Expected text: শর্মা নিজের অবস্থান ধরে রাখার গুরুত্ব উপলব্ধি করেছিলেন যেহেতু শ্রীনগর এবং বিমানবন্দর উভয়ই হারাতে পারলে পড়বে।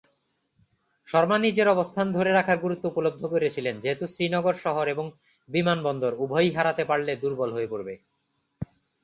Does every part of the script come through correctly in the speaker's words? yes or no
no